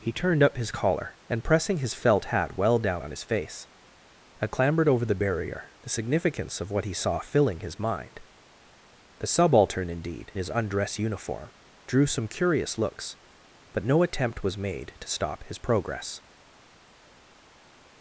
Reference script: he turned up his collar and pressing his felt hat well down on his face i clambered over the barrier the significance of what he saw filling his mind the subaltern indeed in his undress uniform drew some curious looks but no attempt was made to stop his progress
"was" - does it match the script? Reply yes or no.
yes